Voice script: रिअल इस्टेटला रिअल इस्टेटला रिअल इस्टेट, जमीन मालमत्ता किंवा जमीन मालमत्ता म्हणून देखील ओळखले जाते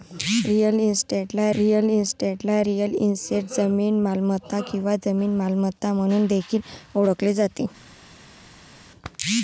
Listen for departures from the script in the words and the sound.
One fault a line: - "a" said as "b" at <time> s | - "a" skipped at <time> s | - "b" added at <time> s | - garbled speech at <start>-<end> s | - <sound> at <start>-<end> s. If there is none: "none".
none